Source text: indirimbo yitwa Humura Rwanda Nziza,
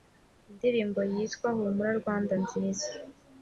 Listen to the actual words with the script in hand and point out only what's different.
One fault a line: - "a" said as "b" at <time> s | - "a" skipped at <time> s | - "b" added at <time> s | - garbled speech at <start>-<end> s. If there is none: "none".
none